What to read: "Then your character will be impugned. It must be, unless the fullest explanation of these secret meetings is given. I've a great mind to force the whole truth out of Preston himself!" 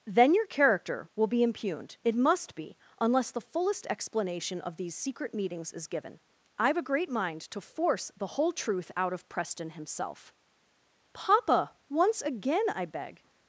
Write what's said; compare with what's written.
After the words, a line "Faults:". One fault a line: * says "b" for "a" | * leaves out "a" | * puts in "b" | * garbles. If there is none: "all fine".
"Then your character will be impugned. It must be, unless the fullest explanation of these secret meetings is given. I've a great mind to force the whole truth out of Preston himself!" "Papa! once again I beg
Faults:
* puts in "Papa once again I beg"